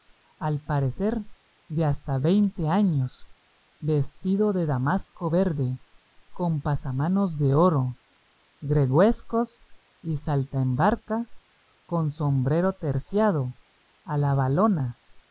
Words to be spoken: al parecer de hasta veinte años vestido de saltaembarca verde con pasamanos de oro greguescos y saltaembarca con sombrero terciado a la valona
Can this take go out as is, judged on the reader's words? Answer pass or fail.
fail